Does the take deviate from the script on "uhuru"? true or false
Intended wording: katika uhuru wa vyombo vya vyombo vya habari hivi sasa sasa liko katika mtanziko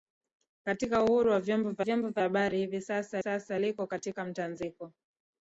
false